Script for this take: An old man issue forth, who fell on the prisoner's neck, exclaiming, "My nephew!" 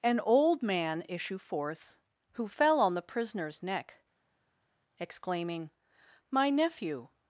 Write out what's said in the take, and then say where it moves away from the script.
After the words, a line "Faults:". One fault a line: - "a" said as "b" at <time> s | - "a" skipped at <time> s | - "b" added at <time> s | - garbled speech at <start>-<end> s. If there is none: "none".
An old man issue forth, who fell on the prisoner's neck, exclaiming, "My nephew!"
Faults:
none